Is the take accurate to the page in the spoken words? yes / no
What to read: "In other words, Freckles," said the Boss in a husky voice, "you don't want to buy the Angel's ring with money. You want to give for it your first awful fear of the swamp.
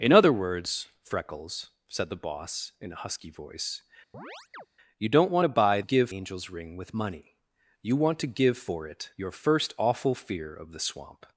no